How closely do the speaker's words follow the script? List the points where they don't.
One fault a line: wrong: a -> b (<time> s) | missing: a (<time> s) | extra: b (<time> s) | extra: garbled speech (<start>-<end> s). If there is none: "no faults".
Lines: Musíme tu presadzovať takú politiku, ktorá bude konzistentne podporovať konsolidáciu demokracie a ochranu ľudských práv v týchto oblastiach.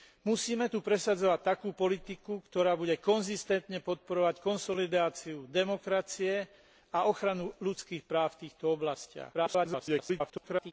extra: garbled speech (9.3-10.7 s)